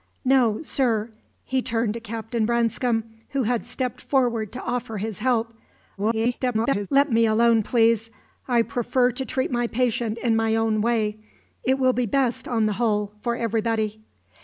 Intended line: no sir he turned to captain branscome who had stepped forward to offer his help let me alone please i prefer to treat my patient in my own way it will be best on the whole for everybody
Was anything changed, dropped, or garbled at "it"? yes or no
no